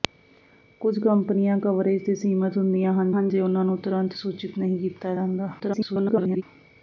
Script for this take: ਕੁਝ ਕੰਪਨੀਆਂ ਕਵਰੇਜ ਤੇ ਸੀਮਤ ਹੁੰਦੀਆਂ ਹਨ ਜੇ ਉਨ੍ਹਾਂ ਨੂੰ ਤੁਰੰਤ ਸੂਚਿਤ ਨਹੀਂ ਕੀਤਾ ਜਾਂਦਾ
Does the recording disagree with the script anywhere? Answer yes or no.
yes